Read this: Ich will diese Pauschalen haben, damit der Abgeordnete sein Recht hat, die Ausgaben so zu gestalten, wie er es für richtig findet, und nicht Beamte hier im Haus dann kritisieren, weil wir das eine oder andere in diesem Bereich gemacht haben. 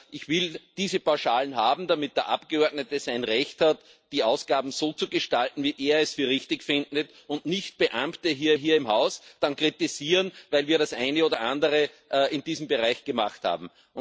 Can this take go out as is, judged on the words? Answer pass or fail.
fail